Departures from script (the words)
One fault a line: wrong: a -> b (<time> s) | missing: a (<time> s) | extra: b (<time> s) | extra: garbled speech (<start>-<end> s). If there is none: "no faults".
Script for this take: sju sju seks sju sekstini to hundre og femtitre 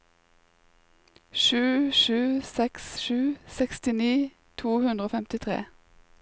no faults